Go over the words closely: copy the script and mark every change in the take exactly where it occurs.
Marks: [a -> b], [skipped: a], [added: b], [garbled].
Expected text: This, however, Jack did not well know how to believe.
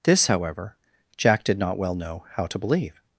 This, however, Jack did not well know how to believe.